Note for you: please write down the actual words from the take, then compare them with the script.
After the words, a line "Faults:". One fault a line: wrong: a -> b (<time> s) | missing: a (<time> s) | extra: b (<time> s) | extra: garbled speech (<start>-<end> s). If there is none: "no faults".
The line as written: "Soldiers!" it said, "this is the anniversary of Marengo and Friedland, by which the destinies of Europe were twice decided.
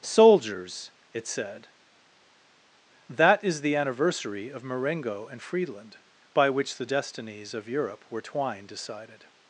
"Soldiers!" it said, "that is the anniversary of Marengo and Friedland, by which the destinies of Europe were twine decided.
Faults:
wrong: this -> that (3.1 s)
wrong: twice -> twine (8.2 s)